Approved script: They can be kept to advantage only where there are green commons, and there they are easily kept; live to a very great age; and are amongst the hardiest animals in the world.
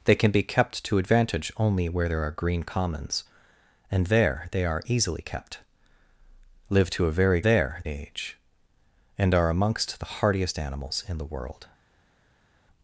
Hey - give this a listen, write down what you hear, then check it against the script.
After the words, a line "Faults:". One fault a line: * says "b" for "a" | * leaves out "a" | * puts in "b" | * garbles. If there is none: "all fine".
They can be kept to advantage only where there are green commons, and there they are easily kept; live to a very there age; and are amongst the hardiest animals in the world.
Faults:
* says "there" for "great"